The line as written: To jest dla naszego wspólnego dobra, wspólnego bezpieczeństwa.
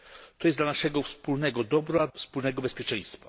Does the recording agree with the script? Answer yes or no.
yes